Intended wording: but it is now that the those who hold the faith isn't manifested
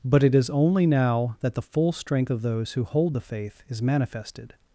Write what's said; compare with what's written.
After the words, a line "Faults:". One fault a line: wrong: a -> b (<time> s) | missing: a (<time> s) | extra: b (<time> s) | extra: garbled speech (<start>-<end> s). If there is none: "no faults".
but it is only now that the full strength of those who hold the faith is manifested
Faults:
extra: only (0.5 s)
extra: full strength of (1.6 s)
wrong: isn't -> is (3.7 s)